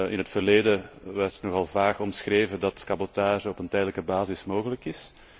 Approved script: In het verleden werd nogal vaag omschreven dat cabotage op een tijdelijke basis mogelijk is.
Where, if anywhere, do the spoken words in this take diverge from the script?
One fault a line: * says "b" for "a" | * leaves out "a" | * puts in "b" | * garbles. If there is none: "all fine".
all fine